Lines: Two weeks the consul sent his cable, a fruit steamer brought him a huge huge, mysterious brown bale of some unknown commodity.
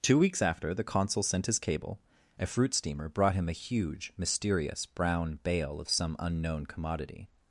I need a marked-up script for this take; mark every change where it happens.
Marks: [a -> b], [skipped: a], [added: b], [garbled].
Two weeks [added: after] the consul sent his cable, a fruit steamer brought him a huge [skipped: huge,] mysterious brown bale of some unknown commodity.